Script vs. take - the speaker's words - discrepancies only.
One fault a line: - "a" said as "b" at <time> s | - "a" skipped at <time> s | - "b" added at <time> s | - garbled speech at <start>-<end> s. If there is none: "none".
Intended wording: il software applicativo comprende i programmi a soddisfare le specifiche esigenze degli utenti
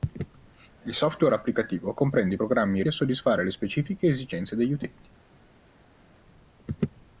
none